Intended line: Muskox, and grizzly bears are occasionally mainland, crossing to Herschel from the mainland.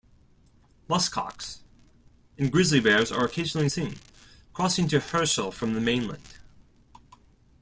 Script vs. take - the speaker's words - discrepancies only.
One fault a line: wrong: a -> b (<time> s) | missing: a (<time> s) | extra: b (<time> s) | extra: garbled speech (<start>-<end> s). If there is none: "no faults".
wrong: mainland -> seen (3.7 s)